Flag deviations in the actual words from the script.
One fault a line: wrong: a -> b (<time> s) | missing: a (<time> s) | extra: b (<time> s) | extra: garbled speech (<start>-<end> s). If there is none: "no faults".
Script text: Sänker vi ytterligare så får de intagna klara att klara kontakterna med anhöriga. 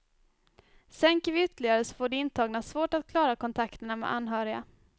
wrong: klara -> svårt (2.6 s)